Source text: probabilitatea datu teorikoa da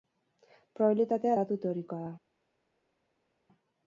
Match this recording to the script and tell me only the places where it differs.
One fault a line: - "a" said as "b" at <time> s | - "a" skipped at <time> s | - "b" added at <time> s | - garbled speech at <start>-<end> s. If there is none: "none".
none